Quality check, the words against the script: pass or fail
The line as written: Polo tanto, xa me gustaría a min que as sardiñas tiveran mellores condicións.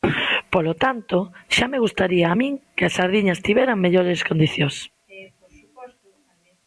pass